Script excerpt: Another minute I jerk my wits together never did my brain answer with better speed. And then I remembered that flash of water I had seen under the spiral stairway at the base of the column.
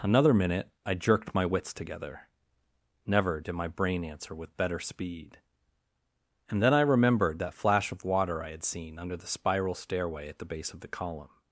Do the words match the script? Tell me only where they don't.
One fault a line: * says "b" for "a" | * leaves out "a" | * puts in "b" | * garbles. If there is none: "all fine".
* says "jerked" for "jerk"